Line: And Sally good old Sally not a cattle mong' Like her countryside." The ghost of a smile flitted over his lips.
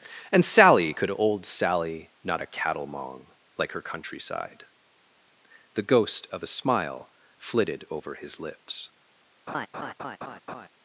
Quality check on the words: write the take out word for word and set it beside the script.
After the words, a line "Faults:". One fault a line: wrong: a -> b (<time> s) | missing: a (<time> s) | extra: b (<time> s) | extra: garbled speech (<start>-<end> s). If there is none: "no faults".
And Sally could old Sally not a cattle mong' Like her countryside." The ghost of a smile flitted over his lips.
Faults:
wrong: good -> could (0.9 s)